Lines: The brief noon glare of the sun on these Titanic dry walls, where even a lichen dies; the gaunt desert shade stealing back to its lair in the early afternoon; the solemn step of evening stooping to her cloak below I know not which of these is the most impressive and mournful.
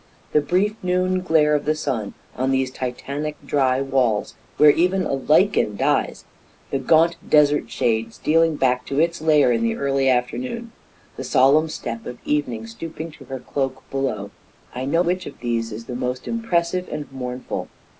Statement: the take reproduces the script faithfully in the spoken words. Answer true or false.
false